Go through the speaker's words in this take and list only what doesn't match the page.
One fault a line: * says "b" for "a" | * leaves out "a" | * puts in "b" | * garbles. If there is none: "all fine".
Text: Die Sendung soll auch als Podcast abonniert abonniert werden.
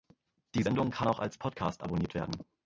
* says "kann" for "soll"
* leaves out "abonniert"